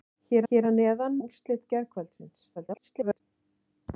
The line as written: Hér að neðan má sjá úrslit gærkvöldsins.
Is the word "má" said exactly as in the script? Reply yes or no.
no